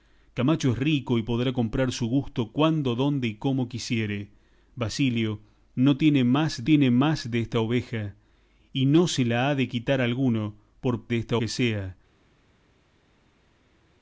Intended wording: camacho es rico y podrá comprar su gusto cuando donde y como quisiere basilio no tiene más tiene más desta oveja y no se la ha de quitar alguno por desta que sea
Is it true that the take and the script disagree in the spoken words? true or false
false